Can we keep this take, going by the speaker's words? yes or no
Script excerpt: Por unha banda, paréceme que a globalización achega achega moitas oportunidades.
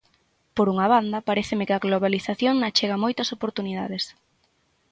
no